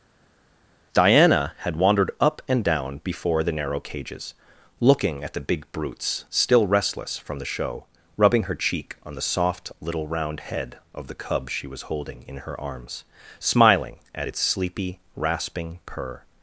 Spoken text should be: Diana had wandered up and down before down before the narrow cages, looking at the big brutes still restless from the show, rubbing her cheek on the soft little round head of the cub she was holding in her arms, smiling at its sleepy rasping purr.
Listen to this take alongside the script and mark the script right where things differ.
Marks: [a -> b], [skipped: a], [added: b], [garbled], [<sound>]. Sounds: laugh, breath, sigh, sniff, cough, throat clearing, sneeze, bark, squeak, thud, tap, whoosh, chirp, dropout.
Diana had wandered up and down before [skipped: down before] the narrow cages, looking at the big brutes still restless from the show, rubbing her cheek on the soft little round head of the cub she was holding in her arms, smiling at its sleepy rasping purr.